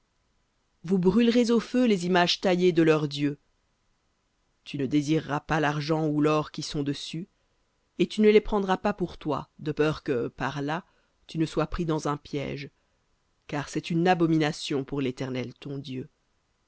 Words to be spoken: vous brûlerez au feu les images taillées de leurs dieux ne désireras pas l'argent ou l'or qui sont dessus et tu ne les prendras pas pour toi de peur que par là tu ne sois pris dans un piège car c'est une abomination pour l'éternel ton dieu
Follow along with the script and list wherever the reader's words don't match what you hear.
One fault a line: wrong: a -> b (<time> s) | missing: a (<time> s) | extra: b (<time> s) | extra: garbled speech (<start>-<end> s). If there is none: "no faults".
extra: tu (4.6 s)